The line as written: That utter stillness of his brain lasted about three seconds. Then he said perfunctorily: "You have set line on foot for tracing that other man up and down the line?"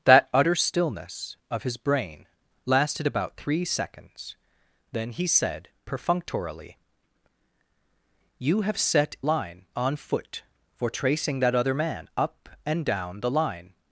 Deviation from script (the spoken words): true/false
false